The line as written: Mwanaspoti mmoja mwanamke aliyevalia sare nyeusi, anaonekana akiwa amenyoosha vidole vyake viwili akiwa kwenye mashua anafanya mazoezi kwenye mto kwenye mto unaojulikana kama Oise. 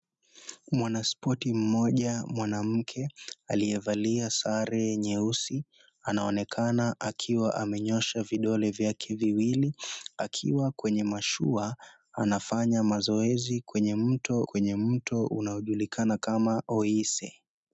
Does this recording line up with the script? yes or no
yes